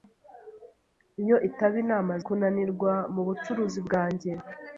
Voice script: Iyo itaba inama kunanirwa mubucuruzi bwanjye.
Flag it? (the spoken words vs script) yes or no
no